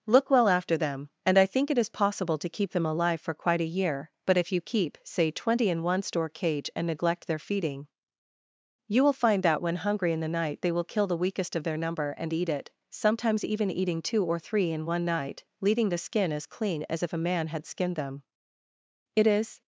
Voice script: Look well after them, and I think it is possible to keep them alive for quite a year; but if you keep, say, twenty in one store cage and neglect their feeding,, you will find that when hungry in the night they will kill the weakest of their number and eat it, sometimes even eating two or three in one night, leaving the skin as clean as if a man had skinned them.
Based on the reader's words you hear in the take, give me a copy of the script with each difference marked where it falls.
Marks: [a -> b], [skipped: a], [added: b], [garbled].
Look well after them, and I think it is possible to keep them alive for quite a year; but if you keep, say, twenty in one store cage and neglect their feeding,, you will find that when hungry in the night they will kill the weakest of their number and eat it, sometimes even eating two or three in one night, leaving the skin as clean as if a man had skinned them. [added: It is]